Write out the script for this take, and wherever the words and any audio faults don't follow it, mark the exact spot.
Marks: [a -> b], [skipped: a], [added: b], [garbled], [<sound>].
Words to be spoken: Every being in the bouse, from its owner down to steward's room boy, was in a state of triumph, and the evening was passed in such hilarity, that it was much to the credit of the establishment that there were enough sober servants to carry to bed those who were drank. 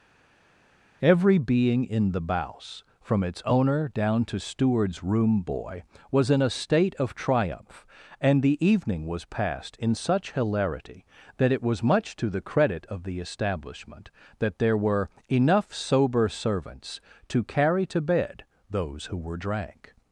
Every being in the bouse, from its owner down to steward's room boy, was in a state of triumph, and the evening was passed in such hilarity, that it was much to the credit of the establishment that there were enough sober servants to carry to bed those who were drank.